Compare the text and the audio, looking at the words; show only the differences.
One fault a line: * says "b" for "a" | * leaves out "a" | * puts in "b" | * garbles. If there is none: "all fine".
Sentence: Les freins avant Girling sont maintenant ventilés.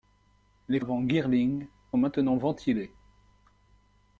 * leaves out "freins"
* leaves out "sont"